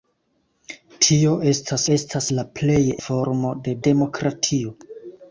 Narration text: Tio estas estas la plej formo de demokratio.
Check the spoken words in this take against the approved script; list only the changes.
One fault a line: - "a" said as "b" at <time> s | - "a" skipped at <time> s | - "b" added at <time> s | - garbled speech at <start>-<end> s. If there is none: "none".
none